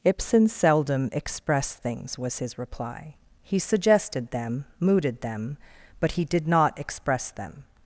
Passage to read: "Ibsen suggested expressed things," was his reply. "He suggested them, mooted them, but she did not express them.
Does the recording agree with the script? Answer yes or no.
no